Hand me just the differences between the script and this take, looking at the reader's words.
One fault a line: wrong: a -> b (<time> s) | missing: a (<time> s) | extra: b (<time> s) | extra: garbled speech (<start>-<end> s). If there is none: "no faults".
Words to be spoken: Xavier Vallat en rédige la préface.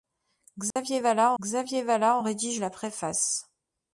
extra: xavier Vallat (1.4 s)